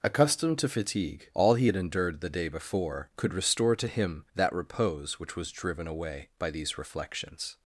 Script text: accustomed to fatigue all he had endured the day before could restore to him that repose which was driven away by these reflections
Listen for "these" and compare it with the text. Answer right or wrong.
right